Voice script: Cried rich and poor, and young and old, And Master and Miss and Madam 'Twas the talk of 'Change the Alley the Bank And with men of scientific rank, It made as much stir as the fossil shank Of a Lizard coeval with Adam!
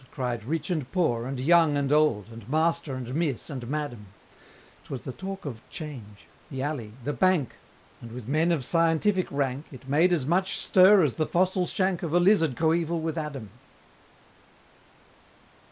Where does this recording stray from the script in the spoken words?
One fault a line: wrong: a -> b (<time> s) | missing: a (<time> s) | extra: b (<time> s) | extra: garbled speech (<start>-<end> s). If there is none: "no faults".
no faults